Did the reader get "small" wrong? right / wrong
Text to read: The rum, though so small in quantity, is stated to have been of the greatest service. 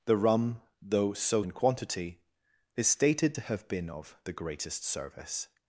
wrong